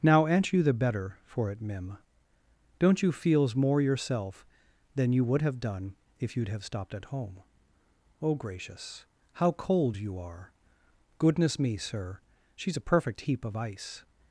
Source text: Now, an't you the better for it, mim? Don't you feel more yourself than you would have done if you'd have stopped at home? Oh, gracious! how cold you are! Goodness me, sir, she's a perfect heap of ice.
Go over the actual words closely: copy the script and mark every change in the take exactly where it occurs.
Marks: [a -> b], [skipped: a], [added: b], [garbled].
Now, an't you the better for it, mim? Don't you [feel -> feels] more yourself than you would have done if you'd have stopped at home? Oh, gracious! how cold you are! Goodness me, sir, she's a perfect heap of ice.